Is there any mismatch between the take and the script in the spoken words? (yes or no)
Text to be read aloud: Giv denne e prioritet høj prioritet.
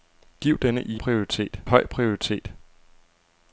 no